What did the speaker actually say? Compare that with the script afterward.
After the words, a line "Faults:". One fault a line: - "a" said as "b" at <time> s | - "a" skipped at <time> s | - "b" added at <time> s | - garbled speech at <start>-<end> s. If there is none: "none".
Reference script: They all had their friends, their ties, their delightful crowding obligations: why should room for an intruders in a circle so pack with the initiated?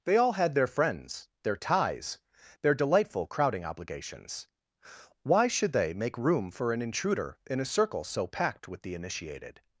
They all had their friends, their ties, their delightful crowding obligations: why should they make room for an intruder in a circle so packed with the initiated?
Faults:
- "they make" added at 5.7 s
- "intruders" said as "intruder" at 6.8 s
- "pack" said as "packed" at 8.3 s